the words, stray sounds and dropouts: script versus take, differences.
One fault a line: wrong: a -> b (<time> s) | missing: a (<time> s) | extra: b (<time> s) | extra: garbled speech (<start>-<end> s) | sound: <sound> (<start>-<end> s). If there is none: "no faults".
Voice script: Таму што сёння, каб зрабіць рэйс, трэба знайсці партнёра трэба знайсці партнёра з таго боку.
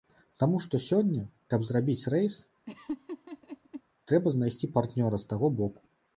sound: laugh (2.7-3.8 s)
missing: трэба знайсці партнёра (5.2 s)